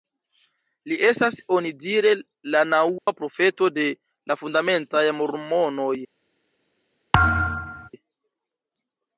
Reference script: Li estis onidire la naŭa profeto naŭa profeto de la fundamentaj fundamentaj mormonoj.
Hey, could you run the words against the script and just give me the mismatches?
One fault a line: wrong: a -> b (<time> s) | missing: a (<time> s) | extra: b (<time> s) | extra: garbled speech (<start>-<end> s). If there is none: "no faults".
wrong: estis -> estas (1.1 s)
missing: naŭa profeto (3.7 s)
missing: fundamentaj (5.1 s)